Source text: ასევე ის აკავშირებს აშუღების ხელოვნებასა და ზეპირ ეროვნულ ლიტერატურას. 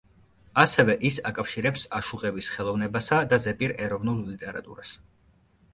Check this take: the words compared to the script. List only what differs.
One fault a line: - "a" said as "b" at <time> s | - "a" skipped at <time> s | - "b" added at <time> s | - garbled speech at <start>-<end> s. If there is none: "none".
none